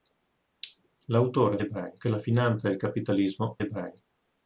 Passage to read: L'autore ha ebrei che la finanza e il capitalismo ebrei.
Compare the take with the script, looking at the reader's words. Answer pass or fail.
pass